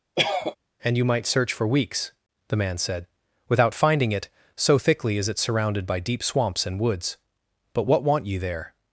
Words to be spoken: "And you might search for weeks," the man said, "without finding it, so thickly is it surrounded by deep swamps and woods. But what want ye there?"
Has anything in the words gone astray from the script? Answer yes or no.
no